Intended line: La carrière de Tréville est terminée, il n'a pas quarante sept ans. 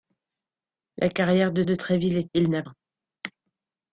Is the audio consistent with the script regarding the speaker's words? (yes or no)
no